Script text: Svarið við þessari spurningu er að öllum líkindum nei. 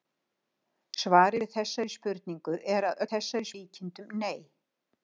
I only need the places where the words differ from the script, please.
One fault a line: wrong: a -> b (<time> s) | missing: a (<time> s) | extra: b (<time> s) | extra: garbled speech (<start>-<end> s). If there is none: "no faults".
wrong: öllum -> þessari (3.1 s)